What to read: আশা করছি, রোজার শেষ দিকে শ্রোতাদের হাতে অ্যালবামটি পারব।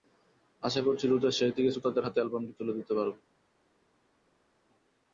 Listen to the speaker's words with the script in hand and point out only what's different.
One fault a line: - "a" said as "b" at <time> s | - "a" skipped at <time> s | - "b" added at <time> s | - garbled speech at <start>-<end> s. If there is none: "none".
- "তুলে দিতে" added at 2.6 s